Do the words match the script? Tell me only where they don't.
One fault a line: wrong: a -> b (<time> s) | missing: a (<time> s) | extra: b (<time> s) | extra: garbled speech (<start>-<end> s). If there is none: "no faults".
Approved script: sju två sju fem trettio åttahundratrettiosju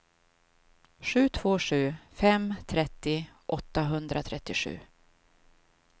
no faults